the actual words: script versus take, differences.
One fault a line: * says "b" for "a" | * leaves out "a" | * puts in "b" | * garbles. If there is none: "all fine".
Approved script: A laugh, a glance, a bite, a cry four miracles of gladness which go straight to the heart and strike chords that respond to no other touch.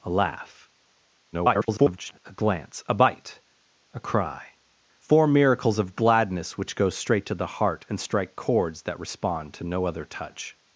* garbles